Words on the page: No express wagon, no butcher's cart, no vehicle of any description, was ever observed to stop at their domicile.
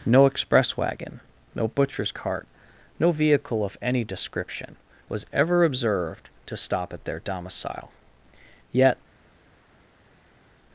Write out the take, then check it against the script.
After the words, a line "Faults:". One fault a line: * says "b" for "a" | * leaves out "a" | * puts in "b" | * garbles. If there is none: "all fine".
No express wagon, no butcher's cart, no vehicle of any description, was ever observed to stop at their domicile. Yet
Faults:
* puts in "Yet"